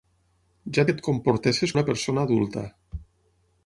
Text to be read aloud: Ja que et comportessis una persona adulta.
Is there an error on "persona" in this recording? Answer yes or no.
no